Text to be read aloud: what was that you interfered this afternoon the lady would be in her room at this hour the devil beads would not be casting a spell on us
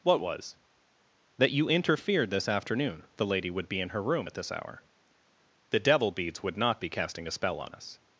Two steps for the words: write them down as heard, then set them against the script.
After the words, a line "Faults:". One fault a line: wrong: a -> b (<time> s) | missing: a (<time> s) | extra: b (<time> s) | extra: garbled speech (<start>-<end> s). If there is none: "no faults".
what was that you interfered this afternoon the lady would be in her room at this hour the devil beads would not be casting a spell on us
Faults:
no faults